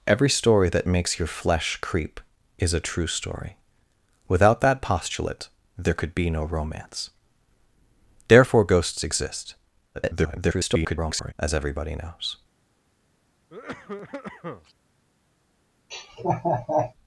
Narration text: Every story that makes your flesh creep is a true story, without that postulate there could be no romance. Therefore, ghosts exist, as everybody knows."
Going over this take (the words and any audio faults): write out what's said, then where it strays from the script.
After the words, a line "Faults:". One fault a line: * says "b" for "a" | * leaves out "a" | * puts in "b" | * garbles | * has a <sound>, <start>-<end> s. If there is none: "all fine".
Every story that makes your flesh creep is a true story, without that postulate there could be no romance. Therefore, ghosts exist, [garbled] as everybody knows."
Faults:
* garbles
* has a cough, 13.5-14.7 s
* has a laugh, 15.9-16.9 s